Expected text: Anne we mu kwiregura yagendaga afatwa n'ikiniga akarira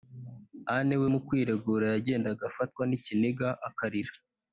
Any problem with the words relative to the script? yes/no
no